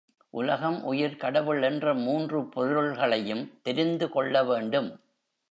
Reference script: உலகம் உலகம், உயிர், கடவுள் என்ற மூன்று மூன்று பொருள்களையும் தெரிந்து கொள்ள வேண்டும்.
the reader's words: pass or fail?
fail